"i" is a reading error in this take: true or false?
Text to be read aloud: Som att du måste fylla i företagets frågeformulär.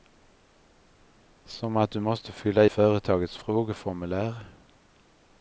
true